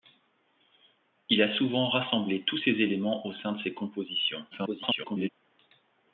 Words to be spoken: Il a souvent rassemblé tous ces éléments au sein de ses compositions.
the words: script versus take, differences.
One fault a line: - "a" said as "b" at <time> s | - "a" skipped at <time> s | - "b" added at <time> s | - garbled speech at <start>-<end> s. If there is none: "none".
- garbled speech at 4.5-5.3 s